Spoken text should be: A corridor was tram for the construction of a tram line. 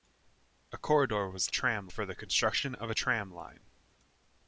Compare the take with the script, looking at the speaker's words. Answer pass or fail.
pass